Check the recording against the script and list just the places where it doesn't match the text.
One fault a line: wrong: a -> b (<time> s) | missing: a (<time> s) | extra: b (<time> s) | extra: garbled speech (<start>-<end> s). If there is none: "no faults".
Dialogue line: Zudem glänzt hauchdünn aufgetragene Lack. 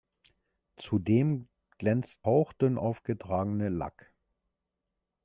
no faults